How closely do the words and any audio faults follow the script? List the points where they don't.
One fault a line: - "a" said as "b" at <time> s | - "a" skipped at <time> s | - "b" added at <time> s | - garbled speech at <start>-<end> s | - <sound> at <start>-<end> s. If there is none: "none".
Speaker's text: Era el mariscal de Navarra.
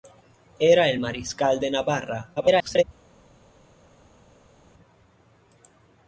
- garbled speech at 2.4-2.8 s